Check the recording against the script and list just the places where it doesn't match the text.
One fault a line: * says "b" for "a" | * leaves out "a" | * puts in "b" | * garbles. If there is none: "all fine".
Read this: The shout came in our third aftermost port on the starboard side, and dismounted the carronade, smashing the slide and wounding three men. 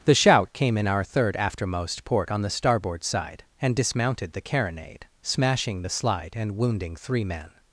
all fine